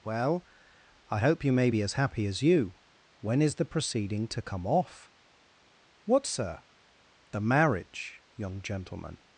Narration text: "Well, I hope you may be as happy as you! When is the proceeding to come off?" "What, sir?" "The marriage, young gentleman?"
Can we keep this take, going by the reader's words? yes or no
yes